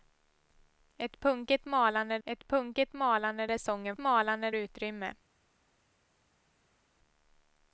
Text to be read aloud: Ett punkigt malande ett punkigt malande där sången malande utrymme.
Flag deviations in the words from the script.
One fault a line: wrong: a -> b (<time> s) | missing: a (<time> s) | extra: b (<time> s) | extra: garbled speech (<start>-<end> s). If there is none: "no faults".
no faults